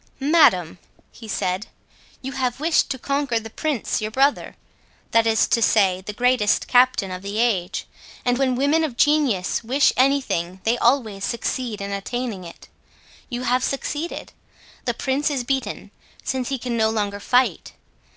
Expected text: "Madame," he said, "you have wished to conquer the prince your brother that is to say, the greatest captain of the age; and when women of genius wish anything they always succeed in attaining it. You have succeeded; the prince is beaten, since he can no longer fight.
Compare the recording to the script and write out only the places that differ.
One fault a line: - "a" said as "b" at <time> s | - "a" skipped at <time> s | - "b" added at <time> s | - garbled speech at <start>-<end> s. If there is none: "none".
none